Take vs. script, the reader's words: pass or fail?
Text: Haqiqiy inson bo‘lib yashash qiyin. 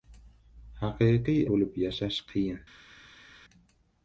fail